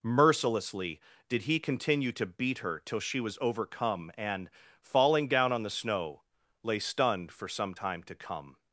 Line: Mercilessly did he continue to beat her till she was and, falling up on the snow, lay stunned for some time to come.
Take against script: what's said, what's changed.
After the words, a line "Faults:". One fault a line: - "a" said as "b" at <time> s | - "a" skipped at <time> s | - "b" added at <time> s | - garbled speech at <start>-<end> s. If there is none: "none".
Mercilessly did he continue to beat her till she was overcome and, falling down on the snow, lay stunned for some time to come.
Faults:
- "overcome" added at 3.4 s
- "up" said as "down" at 5.3 s